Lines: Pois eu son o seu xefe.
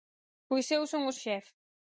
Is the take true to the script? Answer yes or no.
no